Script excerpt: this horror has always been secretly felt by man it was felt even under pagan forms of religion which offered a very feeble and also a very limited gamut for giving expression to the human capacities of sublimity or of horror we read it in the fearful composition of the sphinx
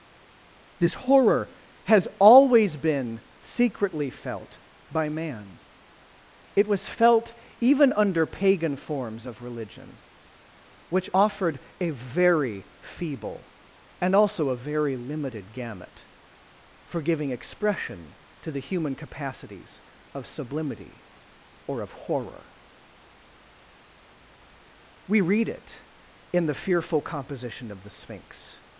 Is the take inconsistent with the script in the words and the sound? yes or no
no